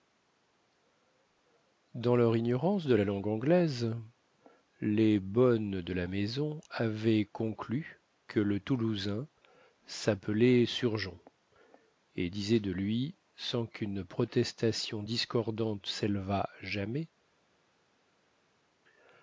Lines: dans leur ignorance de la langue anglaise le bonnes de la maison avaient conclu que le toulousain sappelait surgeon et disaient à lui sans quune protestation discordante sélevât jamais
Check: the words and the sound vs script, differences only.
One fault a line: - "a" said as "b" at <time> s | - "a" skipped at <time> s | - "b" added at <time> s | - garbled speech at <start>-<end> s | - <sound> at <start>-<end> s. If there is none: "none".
- "le" said as "les" at 4.8 s
- "à" said as "de" at 12.6 s